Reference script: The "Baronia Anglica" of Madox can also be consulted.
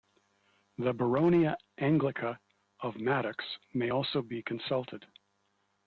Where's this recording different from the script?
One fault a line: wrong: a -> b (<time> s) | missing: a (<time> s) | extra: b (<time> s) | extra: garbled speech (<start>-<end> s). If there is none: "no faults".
wrong: can -> may (3.7 s)